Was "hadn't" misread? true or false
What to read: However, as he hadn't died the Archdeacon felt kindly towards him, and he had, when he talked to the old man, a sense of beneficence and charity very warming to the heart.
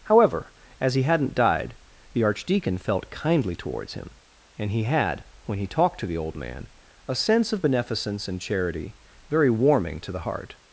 false